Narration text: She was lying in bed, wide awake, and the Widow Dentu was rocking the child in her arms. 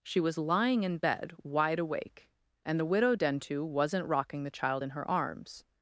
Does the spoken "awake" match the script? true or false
true